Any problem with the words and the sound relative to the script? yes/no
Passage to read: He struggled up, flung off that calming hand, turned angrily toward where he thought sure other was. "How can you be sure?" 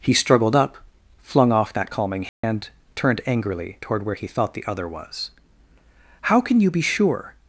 yes